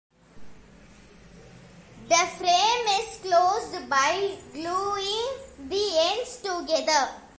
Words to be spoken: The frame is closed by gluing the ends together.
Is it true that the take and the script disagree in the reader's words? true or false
false